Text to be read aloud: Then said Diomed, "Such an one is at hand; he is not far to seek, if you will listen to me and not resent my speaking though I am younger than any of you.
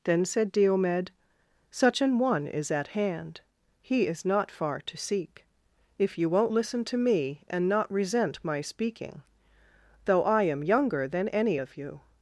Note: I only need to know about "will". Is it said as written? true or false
false